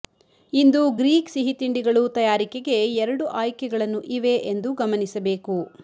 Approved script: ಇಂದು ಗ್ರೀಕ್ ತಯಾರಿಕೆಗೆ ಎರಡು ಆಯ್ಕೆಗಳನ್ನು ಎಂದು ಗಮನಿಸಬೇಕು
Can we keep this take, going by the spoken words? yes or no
no